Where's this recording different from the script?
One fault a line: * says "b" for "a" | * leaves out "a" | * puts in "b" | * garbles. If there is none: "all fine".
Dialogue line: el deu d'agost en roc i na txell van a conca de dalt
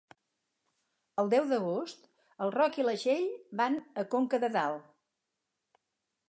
all fine